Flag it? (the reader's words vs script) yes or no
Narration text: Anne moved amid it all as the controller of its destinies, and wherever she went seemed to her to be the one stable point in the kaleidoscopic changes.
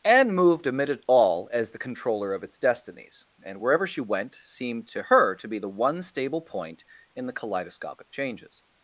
no